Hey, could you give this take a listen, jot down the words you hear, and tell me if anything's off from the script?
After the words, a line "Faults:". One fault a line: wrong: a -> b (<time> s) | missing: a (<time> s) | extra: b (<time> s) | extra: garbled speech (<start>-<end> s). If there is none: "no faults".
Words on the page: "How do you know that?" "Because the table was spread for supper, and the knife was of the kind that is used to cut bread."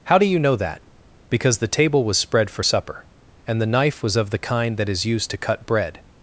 "How do you know that?" "Because the table was spread for supper, and the knife was of the kind that is used to cut bread."
Faults:
no faults